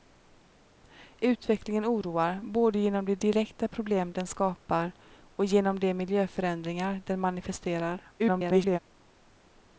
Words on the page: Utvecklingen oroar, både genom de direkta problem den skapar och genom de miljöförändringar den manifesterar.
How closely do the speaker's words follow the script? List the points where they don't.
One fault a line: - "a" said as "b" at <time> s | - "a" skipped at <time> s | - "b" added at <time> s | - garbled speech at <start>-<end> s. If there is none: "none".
- garbled speech at 8.2-8.8 s